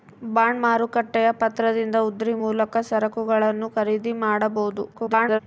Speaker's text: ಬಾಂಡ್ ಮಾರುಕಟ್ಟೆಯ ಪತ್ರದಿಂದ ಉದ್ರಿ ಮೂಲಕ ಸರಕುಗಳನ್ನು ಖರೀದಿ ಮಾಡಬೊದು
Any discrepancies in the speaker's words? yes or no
yes